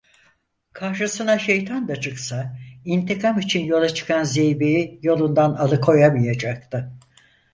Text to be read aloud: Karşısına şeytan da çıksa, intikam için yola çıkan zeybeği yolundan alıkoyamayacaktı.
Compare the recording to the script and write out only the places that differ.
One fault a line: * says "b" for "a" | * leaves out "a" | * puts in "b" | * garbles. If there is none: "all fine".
all fine